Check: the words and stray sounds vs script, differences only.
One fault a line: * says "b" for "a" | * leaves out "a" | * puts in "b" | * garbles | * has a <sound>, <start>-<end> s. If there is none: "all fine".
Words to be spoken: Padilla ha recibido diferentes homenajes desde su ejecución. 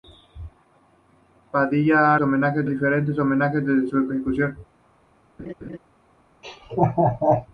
* says "homenajes" for "recibido"
* has a laugh, 5.4-5.8 s
* has a laugh, 6.4-7.5 s